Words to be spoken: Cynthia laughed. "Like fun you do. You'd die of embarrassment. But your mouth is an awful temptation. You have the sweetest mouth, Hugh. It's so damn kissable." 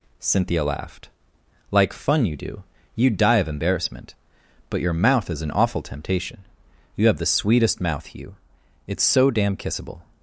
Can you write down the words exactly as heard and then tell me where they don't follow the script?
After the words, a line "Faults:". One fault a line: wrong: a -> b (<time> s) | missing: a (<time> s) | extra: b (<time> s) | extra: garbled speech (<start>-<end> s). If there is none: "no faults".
Cynthia laughed. "Like fun you do. You'd die of embarrassment. But your mouth is an awful temptation. You have the sweetest mouth, Hugh. It's so damn kissable."
Faults:
no faults